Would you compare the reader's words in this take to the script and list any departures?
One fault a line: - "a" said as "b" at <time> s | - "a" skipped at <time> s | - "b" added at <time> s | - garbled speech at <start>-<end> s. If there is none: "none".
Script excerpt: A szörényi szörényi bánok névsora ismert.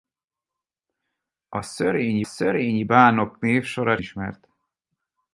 none